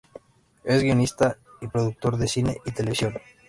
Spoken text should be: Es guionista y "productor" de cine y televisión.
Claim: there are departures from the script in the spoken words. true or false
false